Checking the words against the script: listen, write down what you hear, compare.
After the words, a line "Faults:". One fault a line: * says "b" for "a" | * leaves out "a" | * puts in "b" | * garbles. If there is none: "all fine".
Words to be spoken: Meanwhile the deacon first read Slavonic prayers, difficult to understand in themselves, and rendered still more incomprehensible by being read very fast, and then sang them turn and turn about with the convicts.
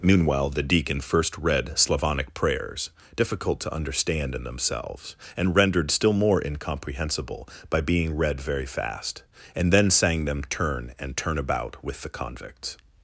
Meanwhile the deacon first read Slavonic prayers, difficult to understand in themselves, and rendered still more incomprehensible by being read very fast, and then sang them turn and turn about with the convicts.
Faults:
all fine